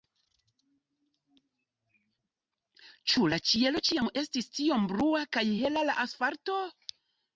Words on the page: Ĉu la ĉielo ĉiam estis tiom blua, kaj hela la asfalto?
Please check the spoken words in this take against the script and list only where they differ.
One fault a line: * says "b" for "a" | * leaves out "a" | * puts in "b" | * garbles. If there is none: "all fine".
all fine